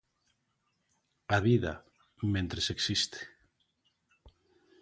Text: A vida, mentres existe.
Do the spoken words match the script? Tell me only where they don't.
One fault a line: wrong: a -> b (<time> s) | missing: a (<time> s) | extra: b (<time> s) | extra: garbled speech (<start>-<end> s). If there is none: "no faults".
no faults